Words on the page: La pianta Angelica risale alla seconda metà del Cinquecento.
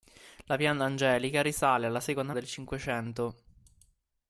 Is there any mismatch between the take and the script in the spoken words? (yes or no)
yes